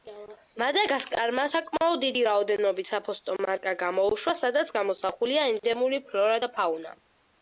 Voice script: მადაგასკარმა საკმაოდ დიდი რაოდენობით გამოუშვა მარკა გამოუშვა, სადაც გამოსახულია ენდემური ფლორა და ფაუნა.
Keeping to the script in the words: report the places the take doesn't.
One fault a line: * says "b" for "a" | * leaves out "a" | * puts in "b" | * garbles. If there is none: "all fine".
* says "საფოსტო" for "გამოუშვა"